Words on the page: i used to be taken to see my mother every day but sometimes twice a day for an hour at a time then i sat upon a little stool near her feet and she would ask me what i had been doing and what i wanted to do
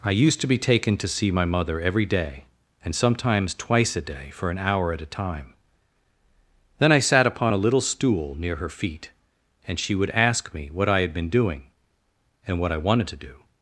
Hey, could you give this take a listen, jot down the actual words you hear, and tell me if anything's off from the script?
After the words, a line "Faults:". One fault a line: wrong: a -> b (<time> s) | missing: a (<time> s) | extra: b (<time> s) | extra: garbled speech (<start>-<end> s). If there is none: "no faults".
i used to be taken to see my mother every day and sometimes twice a day for an hour at a time then i sat upon a little stool near her feet and she would ask me what i had been doing and what i wanted to do
Faults:
wrong: but -> and (2.8 s)